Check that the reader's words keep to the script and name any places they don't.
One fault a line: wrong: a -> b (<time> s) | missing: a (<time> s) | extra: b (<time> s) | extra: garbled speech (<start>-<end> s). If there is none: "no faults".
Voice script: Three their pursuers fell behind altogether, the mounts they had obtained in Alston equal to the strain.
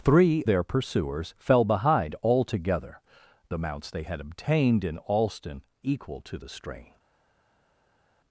no faults